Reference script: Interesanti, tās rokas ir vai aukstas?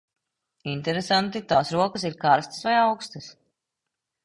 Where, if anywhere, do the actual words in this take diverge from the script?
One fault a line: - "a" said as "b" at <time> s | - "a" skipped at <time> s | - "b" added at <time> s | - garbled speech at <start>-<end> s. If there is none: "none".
- "karstas" added at 2.2 s